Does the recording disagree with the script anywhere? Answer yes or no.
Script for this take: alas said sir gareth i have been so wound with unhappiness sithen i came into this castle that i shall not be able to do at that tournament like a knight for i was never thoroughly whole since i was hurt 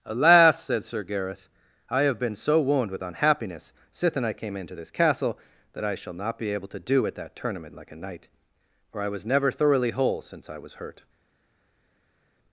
no